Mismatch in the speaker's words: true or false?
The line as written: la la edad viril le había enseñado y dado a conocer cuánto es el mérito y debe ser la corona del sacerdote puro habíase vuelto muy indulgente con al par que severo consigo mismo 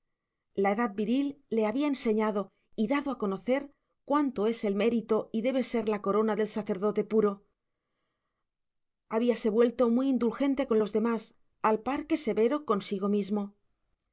true